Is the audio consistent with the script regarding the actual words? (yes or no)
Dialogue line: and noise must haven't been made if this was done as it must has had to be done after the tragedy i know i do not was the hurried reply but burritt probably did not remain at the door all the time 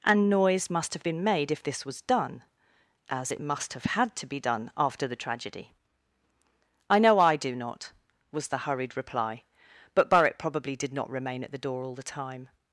no